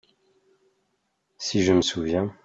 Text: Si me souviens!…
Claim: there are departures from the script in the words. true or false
true